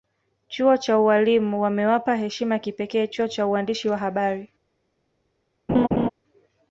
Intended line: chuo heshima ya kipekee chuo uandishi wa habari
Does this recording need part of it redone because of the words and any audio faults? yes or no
yes